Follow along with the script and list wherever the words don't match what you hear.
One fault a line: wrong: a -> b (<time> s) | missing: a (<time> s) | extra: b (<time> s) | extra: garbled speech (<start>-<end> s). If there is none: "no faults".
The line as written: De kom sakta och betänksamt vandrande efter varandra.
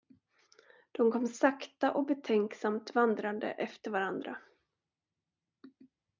no faults